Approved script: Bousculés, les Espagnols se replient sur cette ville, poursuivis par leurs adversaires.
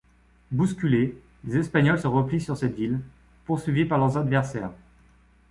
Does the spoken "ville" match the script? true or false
true